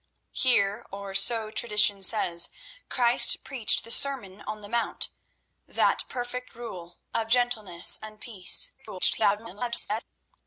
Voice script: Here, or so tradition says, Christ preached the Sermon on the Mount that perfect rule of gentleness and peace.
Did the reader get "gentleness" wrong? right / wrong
right